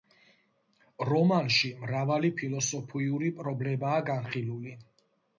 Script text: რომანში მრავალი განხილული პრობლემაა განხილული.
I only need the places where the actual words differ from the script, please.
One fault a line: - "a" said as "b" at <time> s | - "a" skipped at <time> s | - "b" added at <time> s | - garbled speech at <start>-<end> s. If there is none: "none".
- "განხილული" said as "ფილოსოფიური" at 2.4 s